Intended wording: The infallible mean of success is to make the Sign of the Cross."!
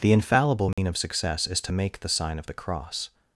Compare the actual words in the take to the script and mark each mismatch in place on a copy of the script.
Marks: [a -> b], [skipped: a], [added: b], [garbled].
The infallible mean of success is to make the Sign of the Cross."!